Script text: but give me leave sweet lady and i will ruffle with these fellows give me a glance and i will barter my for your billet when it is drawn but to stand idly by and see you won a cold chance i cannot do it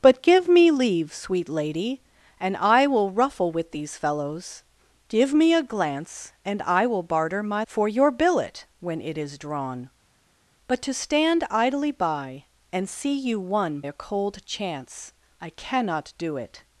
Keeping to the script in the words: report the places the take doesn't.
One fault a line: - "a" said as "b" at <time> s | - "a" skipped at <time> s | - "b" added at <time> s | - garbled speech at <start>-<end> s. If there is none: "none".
none